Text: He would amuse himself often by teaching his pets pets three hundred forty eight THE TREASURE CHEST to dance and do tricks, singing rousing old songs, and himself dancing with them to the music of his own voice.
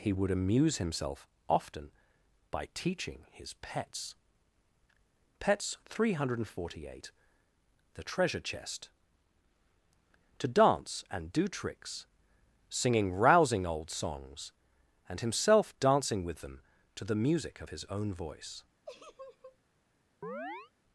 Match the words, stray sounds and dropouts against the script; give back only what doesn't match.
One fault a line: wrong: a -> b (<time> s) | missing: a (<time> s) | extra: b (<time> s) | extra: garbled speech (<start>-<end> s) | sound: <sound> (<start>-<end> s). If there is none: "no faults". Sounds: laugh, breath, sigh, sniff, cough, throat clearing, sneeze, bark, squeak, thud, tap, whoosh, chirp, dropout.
sound: laugh (18.9-19.6 s)
sound: chirp (20.2-20.7 s)